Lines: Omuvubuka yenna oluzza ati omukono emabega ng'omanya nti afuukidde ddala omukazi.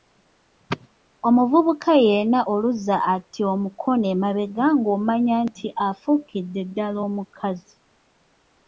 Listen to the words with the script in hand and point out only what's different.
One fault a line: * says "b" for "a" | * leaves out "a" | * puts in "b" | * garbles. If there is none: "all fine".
all fine